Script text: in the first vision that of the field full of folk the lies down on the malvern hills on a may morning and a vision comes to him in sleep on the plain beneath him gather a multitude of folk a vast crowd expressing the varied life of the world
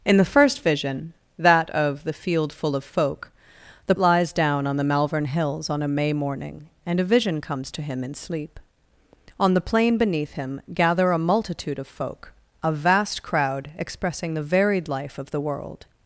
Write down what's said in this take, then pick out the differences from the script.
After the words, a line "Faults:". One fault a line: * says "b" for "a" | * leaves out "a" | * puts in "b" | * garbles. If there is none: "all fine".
in the first vision that of the field full of folk the lies down on the malvern hills on a may morning and a vision comes to him in sleep on the plain beneath him gather a multitude of folk a vast crowd expressing the varied life of the world
Faults:
all fine